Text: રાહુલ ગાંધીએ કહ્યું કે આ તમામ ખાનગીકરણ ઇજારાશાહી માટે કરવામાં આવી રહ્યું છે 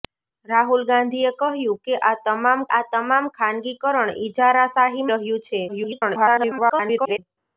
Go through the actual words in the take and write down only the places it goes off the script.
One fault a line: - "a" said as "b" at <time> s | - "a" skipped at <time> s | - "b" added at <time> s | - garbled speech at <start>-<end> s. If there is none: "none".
- "આ તમામ" added at 2.7 s
- "માટે કરવામાં આવી" skipped at 5.1 s
- garbled speech at 5.7-7.2 s